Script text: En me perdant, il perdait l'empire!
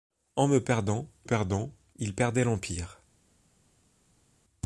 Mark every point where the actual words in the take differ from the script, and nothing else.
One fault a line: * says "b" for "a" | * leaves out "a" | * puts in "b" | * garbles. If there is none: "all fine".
* puts in "perdant"